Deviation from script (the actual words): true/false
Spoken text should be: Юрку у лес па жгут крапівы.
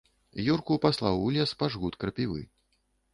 true